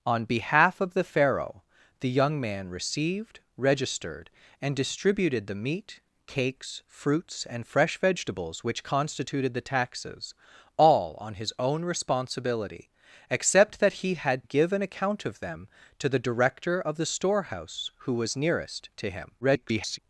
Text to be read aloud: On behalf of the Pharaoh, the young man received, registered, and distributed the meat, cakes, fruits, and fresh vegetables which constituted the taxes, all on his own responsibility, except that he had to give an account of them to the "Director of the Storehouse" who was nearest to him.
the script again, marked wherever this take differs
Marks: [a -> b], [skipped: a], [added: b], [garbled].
On behalf of the Pharaoh, the young man received, registered, and distributed the meat, cakes, fruits, and fresh vegetables which constituted the taxes, all on his own responsibility, except that he had [skipped: to] give an account of them to the "Director of the Storehouse" who was nearest to him. [garbled]